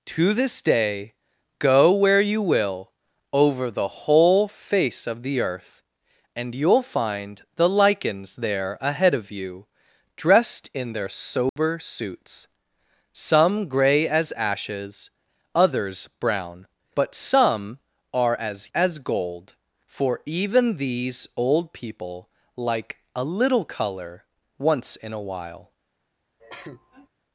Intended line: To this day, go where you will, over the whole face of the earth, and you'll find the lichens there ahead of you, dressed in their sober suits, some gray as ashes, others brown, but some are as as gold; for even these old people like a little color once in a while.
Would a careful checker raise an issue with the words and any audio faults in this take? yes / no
yes